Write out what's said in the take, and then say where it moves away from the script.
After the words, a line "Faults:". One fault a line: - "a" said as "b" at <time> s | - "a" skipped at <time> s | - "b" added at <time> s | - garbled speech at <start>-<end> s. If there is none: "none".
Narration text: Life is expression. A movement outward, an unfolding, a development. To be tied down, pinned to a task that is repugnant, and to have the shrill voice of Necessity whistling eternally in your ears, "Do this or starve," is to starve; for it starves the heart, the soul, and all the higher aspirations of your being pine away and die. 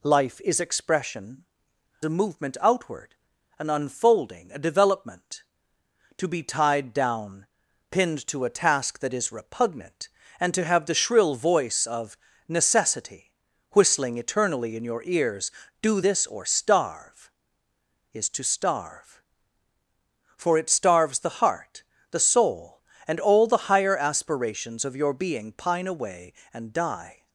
Life is expression. A movement outward, an unfolding, a development. To be tied down, pinned to a task that is repugnant, and to have the shrill voice of Necessity whistling eternally in your ears, "Do this or starve," is to starve; for it starves the heart, the soul, and all the higher aspirations of your being pine away and die.
Faults:
none